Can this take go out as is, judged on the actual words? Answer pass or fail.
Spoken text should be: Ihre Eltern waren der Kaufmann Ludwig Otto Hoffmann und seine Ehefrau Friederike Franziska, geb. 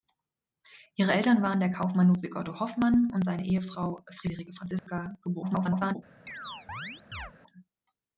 fail